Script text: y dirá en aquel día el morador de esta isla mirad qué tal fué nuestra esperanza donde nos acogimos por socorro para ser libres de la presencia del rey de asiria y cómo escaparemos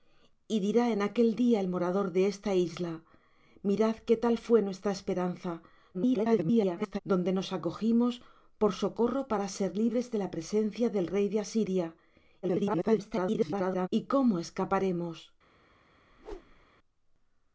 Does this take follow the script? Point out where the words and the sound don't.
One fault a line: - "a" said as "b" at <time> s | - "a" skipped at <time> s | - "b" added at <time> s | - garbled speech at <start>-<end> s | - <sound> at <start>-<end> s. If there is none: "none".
- garbled speech at 5.9-7.0 s
- garbled speech at 12.4-13.9 s
- whoosh at 16.1-16.7 s